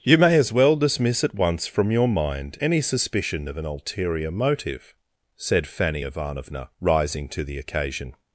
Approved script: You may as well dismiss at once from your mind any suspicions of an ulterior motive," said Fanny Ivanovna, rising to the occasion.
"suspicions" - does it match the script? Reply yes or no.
no